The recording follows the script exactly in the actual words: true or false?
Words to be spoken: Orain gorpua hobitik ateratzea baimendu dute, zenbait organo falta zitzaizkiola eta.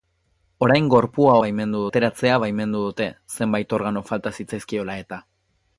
false